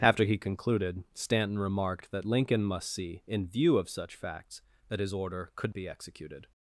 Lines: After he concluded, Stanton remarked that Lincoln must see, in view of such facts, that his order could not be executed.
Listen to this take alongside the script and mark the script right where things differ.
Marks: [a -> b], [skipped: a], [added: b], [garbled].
After he concluded, Stanton remarked that Lincoln must see, in view of such facts, that his order could [skipped: not] be executed.